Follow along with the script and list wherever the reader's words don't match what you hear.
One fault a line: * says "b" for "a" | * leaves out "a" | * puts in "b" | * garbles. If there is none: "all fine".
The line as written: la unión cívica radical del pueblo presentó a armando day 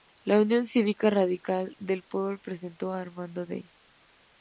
all fine